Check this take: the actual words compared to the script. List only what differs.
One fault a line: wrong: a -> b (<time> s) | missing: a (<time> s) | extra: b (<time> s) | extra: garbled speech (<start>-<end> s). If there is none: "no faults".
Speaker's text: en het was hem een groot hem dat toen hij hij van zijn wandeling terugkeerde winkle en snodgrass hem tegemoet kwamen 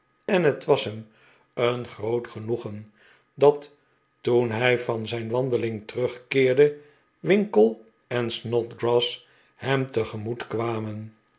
wrong: hem -> genoegen (2.3 s)
missing: hij (4.8 s)